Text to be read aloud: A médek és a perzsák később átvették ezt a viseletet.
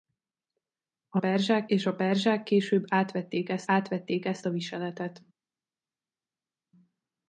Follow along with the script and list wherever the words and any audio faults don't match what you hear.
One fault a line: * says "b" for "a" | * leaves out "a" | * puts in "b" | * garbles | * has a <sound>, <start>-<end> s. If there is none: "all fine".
* says "perzsák" for "médek"
* puts in "átvették ezt"